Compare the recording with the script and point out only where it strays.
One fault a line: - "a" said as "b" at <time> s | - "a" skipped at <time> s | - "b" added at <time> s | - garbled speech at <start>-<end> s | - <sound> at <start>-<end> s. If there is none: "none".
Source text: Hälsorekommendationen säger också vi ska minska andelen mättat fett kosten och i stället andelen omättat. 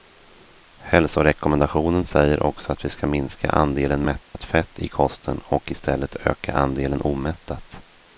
- "att" added at 2.7 s
- dropout at 4.2-4.3 s
- "i" added at 4.8 s
- "öka" added at 6.1 s